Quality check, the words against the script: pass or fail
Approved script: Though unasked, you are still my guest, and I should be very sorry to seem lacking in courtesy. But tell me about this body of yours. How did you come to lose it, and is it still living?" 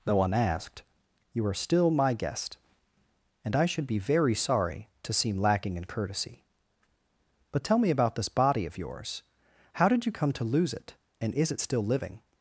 pass